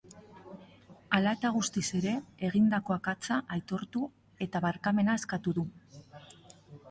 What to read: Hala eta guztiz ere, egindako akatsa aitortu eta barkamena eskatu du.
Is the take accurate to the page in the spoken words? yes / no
yes